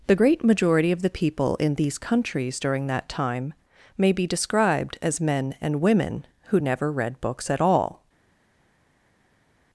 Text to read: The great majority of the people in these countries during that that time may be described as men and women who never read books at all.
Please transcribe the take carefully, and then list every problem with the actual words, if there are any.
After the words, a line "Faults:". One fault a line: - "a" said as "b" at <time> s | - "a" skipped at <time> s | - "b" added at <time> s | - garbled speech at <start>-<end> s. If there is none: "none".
The great majority of the people in these countries during that time may be described as men and women who never read books at all.
Faults:
- "that" skipped at 3.1 s